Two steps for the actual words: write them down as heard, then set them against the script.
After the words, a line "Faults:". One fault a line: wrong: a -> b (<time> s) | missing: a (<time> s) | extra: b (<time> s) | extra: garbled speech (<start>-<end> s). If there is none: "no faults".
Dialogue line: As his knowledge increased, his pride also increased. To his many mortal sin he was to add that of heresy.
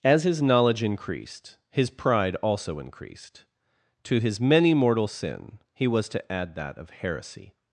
As his knowledge increased, his pride also increased. To his many mortal sin he was to add that of heresy.
Faults:
no faults